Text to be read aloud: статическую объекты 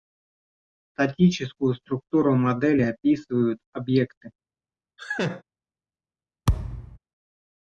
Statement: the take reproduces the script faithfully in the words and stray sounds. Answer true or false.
false